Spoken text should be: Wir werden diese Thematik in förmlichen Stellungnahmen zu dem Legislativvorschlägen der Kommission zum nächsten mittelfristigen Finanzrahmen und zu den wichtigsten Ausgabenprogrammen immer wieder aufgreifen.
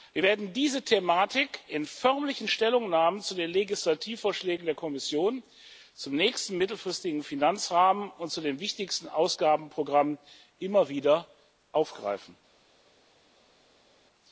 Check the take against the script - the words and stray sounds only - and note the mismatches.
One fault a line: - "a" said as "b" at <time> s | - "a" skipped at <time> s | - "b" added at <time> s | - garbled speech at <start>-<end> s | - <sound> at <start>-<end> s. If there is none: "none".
- "dem" said as "den" at 3.3 s